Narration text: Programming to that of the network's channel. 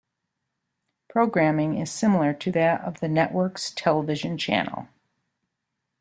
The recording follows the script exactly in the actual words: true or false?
false